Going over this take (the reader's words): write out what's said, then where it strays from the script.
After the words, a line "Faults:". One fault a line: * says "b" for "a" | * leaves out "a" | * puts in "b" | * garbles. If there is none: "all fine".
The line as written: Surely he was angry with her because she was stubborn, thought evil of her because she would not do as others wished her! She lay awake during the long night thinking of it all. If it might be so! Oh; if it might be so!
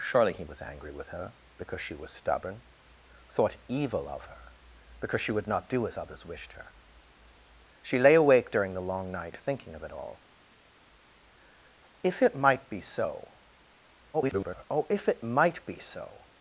Surely he was angry with her because she was stubborn, thought evil of her because she would not do as others wished her! She lay awake during the long night thinking of it all. If it might be so! [garbled] Oh; if it might be so!
Faults:
* garbles